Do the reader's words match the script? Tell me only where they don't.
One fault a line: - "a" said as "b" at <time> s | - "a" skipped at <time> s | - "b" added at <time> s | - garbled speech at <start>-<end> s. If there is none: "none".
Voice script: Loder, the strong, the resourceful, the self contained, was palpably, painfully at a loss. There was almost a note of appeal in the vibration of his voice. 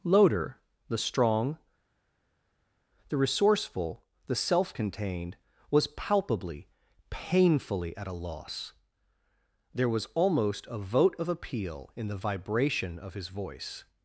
- "note" said as "vote" at 10.8 s